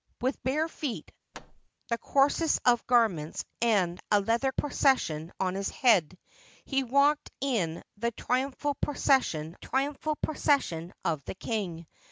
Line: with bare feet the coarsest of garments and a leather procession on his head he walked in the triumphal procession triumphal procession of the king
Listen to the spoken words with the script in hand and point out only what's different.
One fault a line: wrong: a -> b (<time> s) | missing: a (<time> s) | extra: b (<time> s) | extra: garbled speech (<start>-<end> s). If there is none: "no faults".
no faults